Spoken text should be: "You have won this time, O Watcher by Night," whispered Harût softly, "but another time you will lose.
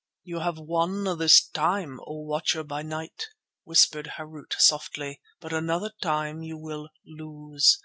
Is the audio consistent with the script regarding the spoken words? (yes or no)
yes